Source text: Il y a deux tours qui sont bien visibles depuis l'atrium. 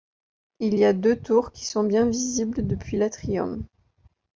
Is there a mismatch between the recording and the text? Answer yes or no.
no